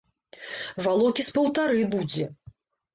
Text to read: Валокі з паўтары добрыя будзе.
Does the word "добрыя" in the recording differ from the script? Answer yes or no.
yes